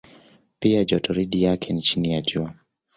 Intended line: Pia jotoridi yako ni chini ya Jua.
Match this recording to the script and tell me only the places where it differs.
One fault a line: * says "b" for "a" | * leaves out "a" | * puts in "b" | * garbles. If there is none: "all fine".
* says "yake" for "yako"